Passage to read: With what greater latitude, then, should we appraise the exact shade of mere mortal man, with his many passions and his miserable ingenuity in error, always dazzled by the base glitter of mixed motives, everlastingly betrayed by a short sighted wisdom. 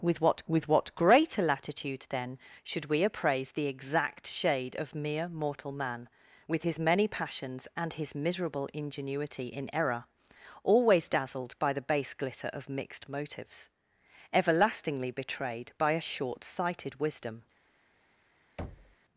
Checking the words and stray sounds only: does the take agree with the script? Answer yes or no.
no